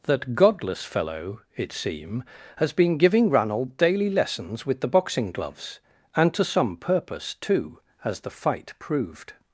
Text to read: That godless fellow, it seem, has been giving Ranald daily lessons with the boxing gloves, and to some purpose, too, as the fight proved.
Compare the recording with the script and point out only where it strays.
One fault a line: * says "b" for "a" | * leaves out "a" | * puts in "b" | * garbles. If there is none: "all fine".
all fine